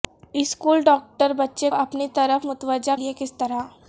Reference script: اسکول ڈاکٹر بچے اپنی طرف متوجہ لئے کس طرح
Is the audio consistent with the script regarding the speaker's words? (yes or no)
yes